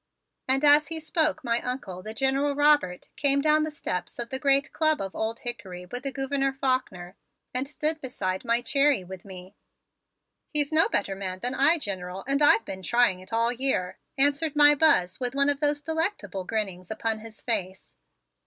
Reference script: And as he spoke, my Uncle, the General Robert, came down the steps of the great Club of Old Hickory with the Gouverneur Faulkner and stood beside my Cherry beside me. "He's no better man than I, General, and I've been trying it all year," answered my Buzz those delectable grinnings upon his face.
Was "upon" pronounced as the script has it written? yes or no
yes